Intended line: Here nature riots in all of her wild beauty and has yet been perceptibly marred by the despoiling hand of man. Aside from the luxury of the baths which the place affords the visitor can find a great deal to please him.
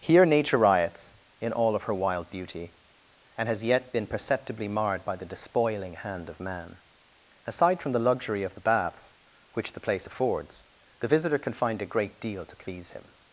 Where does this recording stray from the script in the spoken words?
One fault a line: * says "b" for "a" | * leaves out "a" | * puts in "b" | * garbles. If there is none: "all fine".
all fine